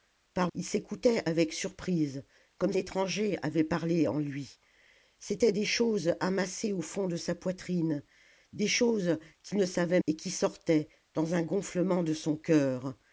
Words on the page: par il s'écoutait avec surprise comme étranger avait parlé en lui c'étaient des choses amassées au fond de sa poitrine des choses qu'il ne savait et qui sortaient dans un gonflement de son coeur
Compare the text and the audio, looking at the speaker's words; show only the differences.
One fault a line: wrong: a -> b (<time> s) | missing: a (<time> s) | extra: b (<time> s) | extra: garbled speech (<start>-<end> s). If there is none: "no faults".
no faults